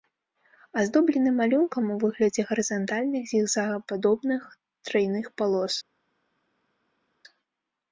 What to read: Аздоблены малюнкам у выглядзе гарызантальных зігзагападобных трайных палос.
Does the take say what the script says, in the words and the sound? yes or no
yes